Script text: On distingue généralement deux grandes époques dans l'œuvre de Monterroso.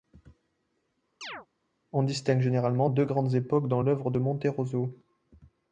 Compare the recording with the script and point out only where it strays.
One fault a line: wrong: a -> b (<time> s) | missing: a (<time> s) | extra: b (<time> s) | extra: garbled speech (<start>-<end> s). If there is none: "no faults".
no faults